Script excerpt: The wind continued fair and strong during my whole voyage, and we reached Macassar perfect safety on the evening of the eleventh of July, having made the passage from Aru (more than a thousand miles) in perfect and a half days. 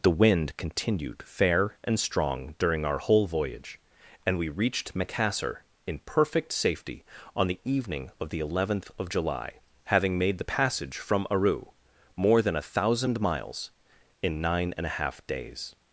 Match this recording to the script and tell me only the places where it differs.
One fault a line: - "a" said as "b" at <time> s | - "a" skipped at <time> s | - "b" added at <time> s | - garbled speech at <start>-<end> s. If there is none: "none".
- "my" said as "our" at 2.9 s
- "in" added at 5.8 s
- "perfect" said as "nine" at 14.4 s